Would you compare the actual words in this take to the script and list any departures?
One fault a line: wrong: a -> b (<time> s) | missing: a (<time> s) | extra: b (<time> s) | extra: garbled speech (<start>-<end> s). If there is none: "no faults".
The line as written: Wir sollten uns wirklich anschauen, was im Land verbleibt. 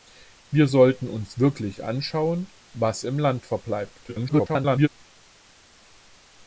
extra: garbled speech (4.1-4.9 s)